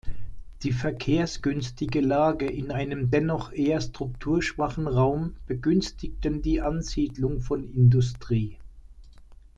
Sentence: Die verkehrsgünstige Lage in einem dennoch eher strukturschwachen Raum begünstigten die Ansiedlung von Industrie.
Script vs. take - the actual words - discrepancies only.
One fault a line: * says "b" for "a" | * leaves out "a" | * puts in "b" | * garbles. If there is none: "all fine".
all fine